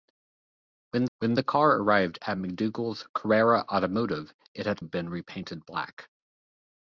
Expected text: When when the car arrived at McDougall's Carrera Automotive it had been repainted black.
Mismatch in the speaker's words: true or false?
false